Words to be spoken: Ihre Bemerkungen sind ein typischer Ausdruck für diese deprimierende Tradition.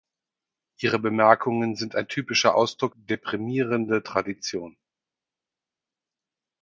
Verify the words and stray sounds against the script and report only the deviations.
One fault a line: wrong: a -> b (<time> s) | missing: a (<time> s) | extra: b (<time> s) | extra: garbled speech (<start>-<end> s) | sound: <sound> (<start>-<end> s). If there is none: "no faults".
missing: für diese (3.0 s)